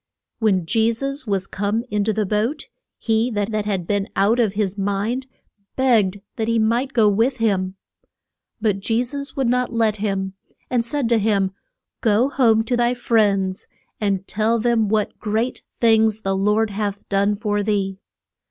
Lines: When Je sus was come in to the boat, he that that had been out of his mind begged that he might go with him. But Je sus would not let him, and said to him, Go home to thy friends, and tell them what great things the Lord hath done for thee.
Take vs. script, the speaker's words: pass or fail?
pass